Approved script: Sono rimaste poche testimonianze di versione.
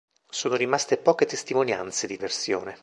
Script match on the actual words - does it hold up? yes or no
yes